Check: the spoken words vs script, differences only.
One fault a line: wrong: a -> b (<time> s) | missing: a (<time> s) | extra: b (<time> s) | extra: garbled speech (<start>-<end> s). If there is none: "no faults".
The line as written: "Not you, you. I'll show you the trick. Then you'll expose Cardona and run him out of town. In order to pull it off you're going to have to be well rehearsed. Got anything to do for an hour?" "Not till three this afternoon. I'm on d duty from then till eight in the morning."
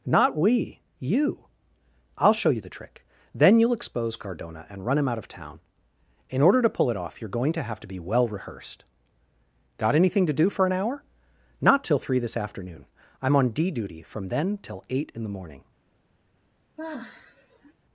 wrong: you -> we (0.3 s)